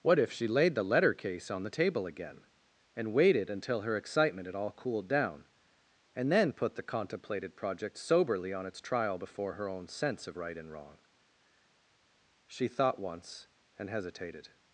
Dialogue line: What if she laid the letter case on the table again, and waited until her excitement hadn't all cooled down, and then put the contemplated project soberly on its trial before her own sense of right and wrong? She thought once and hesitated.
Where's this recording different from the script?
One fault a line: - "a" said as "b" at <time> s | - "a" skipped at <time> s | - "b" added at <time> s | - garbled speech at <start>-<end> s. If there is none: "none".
- "hadn't" said as "had" at 4.5 s